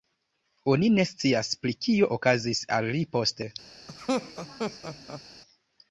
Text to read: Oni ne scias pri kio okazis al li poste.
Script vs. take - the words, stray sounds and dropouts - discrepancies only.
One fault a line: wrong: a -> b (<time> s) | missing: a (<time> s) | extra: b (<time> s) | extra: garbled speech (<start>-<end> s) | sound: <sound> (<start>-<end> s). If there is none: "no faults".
sound: laugh (3.9-5.2 s)